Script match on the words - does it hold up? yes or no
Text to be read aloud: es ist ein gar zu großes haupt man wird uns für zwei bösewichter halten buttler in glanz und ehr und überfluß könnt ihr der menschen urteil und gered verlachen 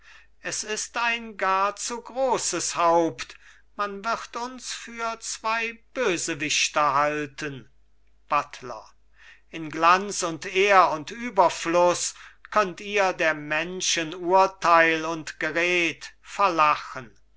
yes